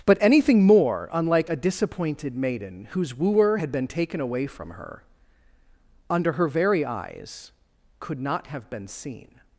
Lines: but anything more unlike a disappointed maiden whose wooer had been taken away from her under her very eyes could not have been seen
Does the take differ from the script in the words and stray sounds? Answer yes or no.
no